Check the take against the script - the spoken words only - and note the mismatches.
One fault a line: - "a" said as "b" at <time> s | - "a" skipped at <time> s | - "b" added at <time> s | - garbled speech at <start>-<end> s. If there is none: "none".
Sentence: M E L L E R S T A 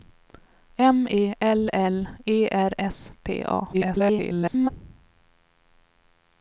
- garbled speech at 3.7-4.7 s